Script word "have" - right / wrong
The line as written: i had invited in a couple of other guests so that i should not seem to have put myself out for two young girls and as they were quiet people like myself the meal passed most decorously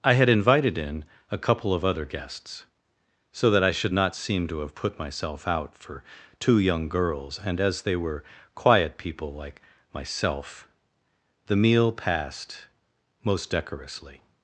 right